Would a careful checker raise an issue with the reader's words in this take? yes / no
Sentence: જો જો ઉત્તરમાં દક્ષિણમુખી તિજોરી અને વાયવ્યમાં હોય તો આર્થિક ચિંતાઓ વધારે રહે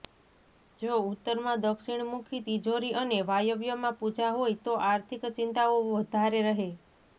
yes